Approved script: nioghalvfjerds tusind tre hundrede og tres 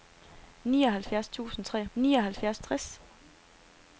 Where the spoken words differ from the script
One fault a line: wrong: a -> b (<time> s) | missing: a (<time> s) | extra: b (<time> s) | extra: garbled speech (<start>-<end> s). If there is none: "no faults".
wrong: hundrede -> nioghalvfjerds (1.9 s)